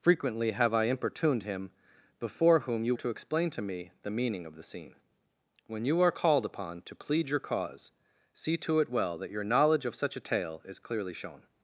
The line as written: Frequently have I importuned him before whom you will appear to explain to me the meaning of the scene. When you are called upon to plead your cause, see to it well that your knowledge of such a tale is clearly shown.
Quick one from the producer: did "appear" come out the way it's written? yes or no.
no